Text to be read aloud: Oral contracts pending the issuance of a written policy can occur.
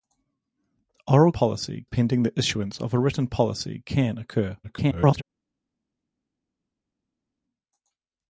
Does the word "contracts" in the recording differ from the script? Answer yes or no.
yes